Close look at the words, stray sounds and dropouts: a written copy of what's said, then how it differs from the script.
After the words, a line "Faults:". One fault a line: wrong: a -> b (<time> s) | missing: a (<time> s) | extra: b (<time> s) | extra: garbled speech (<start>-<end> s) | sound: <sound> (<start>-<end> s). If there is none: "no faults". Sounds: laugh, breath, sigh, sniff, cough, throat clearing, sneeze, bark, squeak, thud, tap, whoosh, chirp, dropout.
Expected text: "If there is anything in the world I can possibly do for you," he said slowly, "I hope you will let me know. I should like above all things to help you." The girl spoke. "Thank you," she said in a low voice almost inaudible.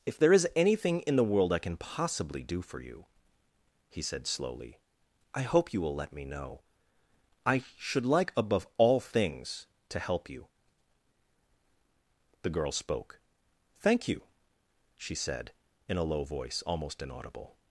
"If there is anything in the world I can possibly do for you," he said slowly, "I hope you will let me know. I should like above all things to help you." The girl spoke. "Thank you," she said in a low voice almost inaudible.
Faults:
no faults